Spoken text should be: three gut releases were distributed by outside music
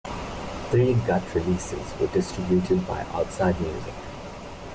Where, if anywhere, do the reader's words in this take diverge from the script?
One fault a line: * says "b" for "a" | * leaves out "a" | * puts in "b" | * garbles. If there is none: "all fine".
all fine